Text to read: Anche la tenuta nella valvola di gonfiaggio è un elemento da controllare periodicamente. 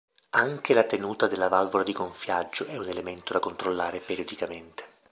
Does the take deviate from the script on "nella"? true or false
true